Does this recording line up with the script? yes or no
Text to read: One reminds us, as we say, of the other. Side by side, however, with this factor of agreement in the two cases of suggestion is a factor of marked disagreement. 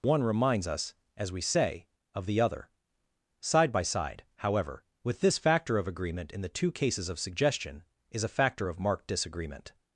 yes